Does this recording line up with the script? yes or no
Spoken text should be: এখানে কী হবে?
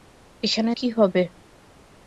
yes